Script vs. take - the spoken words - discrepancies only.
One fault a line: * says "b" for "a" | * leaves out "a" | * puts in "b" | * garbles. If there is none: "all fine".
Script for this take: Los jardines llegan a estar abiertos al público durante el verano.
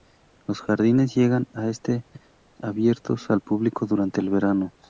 all fine